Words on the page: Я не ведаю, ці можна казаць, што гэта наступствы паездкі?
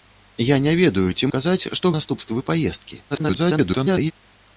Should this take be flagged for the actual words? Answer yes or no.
yes